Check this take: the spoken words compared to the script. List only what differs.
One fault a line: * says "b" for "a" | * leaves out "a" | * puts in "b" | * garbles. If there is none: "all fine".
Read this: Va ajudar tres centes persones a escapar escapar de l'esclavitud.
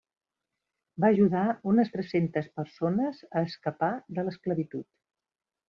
* puts in "unes"
* leaves out "escapar"